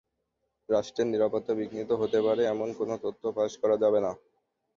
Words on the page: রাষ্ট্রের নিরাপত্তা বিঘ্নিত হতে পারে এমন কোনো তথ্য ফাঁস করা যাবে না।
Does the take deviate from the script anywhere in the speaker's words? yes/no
no